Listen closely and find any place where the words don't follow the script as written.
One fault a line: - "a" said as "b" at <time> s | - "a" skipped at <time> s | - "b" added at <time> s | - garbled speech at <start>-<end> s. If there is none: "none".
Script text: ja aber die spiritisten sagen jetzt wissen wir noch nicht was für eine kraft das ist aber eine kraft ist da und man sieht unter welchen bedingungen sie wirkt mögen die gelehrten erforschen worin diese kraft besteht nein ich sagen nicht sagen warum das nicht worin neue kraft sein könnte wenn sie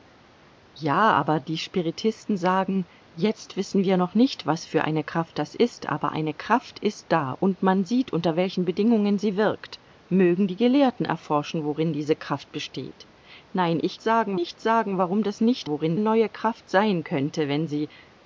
none